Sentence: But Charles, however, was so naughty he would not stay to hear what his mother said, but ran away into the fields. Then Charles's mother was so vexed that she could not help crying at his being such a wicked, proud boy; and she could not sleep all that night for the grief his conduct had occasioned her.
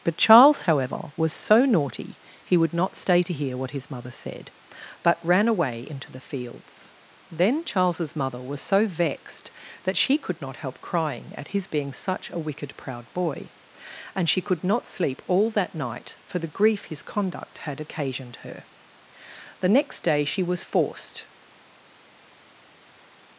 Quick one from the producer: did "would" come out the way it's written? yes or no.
yes